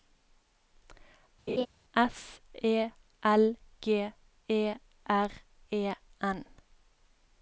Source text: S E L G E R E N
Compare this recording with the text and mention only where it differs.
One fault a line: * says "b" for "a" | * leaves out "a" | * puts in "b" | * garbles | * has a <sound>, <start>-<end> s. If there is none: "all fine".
* has a laugh, 1.5-1.7 s